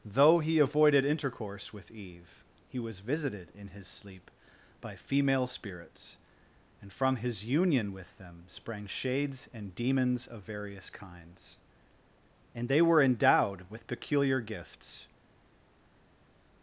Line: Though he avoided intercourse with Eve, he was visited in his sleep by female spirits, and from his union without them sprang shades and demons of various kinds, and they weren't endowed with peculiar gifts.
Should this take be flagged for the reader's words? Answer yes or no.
yes